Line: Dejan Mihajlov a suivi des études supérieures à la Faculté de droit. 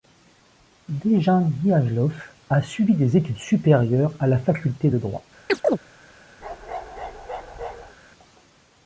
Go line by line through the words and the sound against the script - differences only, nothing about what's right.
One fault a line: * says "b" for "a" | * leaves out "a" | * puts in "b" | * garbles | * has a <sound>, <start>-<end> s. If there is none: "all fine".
* has a chirp, 5.5-5.8 s
* has a bark, 6.4-8.0 s